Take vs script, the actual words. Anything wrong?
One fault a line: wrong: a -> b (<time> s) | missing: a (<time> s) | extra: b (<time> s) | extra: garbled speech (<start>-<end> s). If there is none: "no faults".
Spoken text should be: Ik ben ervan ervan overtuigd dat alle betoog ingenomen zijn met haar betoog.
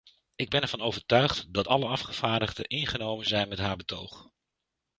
missing: ervan (0.8 s)
wrong: betoog -> afgevaardigden (1.9 s)